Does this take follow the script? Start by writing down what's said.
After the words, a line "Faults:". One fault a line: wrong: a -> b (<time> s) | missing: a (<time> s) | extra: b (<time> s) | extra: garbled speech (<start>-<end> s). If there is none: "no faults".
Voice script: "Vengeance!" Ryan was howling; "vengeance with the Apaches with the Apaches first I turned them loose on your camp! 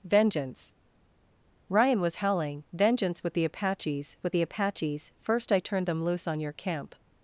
"Vengeance!" Ryan was howling; "vengeance with the Apaches with the Apaches first I turned them loose on your camp!
Faults:
no faults